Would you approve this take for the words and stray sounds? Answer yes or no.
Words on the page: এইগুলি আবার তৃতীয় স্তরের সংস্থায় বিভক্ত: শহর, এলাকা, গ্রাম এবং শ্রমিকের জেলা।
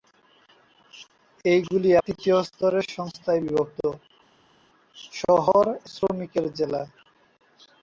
no